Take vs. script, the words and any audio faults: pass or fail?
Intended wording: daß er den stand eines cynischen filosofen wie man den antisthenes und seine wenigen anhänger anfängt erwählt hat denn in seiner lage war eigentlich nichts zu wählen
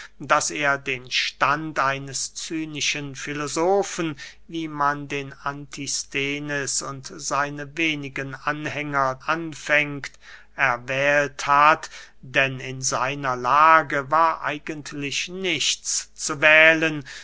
pass